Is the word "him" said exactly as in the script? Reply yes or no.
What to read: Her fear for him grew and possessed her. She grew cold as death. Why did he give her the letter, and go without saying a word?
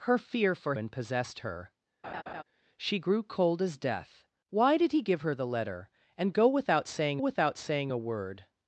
no